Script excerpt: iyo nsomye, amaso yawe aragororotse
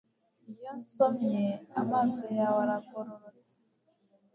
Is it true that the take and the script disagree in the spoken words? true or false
false